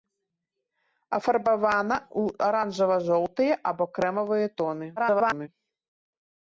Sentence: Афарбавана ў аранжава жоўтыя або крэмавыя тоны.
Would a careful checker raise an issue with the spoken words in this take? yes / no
yes